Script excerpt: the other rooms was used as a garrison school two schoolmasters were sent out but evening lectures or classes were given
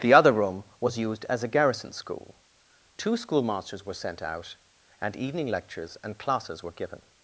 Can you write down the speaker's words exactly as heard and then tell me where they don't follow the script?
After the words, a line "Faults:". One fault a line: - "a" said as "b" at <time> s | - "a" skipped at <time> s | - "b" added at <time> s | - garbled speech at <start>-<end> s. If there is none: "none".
the other room was used as a garrison school two schoolmasters were sent out and evening lectures and classes were given
Faults:
- "rooms" said as "room" at 0.3 s
- "but" said as "and" at 5.0 s
- "or" said as "and" at 6.0 s